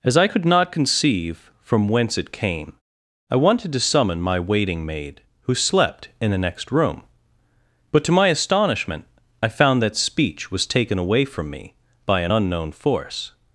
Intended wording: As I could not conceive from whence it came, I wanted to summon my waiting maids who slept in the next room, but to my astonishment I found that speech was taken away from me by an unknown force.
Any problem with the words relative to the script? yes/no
yes